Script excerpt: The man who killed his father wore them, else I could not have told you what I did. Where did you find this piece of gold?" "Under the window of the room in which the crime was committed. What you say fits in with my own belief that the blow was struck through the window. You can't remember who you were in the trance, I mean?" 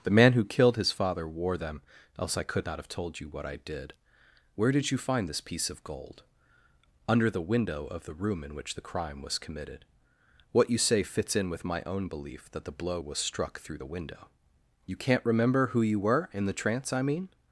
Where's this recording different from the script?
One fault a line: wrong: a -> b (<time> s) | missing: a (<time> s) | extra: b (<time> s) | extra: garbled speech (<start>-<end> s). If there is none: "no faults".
no faults